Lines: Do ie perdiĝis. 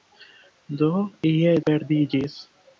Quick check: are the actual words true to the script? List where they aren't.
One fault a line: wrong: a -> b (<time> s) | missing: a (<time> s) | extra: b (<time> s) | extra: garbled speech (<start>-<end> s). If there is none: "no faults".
no faults